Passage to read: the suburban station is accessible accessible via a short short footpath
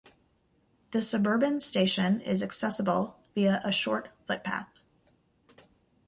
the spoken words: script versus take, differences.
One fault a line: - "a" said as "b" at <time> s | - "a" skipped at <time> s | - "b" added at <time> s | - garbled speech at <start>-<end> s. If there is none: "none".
- "accessible" skipped at 3.2 s
- "short" skipped at 4.1 s